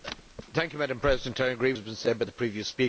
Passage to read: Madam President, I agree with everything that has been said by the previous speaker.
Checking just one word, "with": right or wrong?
wrong